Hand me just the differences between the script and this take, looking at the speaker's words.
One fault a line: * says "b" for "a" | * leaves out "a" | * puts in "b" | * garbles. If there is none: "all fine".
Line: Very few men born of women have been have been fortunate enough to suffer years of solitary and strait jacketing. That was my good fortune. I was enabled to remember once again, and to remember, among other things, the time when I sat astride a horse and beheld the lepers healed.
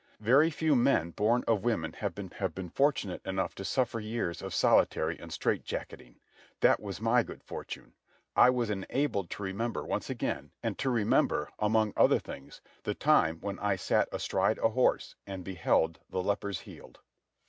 all fine